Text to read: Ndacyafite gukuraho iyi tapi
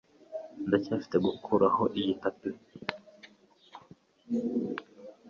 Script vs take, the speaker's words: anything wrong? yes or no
no